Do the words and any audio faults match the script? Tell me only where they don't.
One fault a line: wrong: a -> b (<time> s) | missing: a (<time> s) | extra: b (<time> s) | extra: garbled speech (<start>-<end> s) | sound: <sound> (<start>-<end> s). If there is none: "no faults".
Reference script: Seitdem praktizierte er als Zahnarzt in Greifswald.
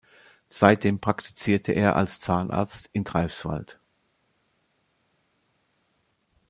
no faults